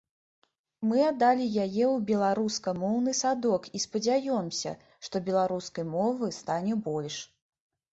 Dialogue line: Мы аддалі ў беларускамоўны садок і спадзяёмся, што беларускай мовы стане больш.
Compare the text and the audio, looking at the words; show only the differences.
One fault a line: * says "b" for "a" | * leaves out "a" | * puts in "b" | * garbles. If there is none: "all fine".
* puts in "яе"